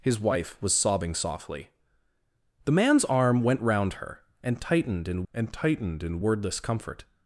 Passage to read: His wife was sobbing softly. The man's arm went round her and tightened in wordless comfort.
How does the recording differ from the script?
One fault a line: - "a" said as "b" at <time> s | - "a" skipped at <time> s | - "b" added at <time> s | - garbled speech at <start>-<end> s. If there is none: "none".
- "and tightened in" added at 5.3 s